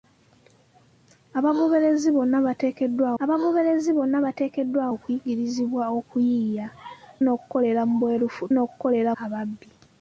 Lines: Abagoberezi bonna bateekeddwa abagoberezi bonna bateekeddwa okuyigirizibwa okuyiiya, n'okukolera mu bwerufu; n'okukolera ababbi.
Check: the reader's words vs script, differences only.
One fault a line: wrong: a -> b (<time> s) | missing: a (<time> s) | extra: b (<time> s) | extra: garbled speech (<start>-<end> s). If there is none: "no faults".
no faults